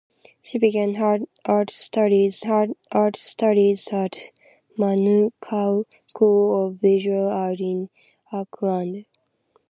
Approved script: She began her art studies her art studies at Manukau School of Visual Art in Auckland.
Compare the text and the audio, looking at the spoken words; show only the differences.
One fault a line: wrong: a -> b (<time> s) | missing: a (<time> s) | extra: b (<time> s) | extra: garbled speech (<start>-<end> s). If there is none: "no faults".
no faults